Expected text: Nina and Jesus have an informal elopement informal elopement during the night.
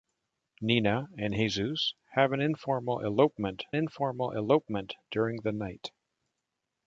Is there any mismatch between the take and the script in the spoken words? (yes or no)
no